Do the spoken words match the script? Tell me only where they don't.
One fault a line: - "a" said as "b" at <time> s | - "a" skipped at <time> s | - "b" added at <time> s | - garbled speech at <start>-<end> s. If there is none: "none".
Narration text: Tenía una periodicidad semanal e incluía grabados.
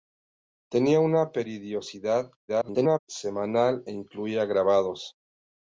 - garbled speech at 2.5-3.0 s